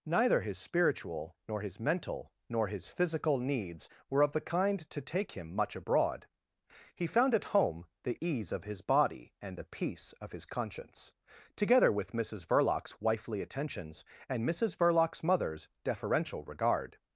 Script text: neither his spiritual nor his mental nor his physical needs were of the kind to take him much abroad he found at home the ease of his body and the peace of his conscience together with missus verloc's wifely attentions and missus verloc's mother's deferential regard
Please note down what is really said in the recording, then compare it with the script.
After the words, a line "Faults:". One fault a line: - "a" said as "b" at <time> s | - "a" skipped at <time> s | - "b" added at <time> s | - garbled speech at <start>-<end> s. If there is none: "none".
neither his spiritual nor his mental nor his physical needs were of the kind to take him much abroad he found at home the ease of his body and the peace of his conscience together with missus verloc's wifely attentions and missus verloc's mother's deferential regard
Faults:
none